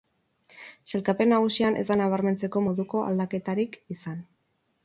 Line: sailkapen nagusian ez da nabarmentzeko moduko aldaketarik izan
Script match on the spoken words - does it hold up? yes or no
yes